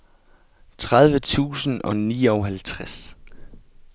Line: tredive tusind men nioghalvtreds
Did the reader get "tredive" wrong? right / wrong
right